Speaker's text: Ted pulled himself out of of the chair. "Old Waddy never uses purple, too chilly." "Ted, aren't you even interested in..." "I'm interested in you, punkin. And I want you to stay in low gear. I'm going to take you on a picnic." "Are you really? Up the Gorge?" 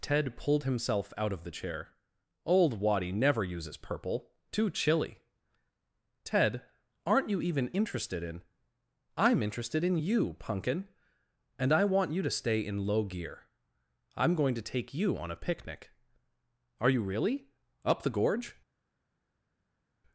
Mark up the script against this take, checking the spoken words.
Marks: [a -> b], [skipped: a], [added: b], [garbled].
Ted pulled himself out of [skipped: of] the chair. "Old Waddy never uses purple, too chilly." "Ted, aren't you even interested in..." "I'm interested in you, punkin. And I want you to stay in low gear. I'm going to take you on a picnic." "Are you really? Up the Gorge?"